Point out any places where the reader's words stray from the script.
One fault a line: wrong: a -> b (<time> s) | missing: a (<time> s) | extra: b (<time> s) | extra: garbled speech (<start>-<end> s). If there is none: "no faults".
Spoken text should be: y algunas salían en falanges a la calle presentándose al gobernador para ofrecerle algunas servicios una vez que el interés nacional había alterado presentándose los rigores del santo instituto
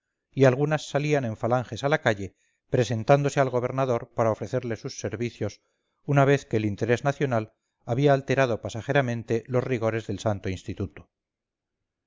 wrong: algunas -> sus (4.8 s)
wrong: presentándose -> pasajeramente (8.6 s)